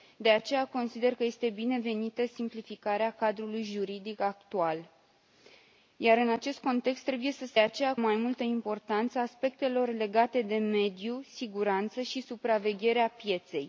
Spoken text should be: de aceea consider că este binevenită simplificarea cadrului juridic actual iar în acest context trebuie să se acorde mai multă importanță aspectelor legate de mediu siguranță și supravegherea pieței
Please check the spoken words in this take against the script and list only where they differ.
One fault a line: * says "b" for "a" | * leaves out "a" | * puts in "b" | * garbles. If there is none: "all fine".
* says "aceea" for "acorde"